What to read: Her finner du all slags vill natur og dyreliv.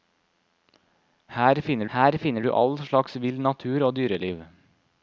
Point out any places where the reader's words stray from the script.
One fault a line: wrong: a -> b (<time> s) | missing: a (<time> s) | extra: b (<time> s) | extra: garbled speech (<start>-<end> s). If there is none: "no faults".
extra: her finner (1.9 s)